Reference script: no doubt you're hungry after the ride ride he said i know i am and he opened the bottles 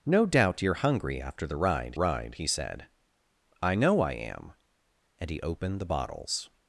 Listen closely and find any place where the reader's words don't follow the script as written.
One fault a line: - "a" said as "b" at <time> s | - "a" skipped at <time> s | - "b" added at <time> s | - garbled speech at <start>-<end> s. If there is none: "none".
none